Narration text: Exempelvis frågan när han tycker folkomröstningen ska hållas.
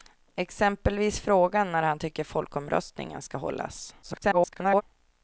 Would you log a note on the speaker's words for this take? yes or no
yes